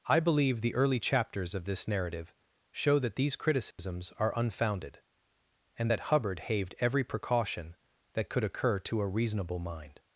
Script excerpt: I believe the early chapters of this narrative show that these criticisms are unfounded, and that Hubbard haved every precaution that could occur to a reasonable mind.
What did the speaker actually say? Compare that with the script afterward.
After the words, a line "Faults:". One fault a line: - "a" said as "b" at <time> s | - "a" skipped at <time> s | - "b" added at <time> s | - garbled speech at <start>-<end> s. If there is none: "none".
I believe the early chapters of this narrative show that these criticisms are unfounded, and that Hubbard haved every precaution that could occur to a reasonable mind.
Faults:
none